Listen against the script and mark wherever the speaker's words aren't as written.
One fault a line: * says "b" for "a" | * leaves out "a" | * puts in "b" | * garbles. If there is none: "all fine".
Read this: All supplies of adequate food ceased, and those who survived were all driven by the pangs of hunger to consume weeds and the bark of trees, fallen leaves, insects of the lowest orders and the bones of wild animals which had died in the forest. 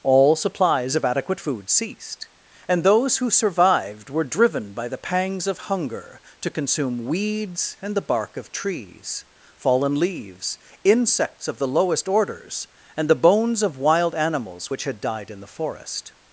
* leaves out "all"